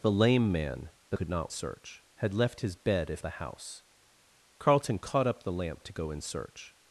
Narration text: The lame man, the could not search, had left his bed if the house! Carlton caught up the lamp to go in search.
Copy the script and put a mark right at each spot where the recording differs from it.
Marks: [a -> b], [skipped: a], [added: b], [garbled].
The lame man, the could not search, had left his bed if the house! Carlton caught up the lamp to go in search.